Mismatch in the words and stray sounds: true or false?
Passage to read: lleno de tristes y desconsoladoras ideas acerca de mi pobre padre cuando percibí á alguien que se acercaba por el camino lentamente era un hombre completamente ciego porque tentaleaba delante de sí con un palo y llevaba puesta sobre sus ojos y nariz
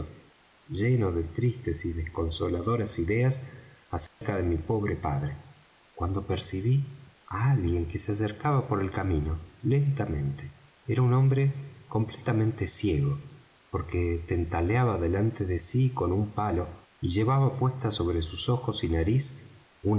true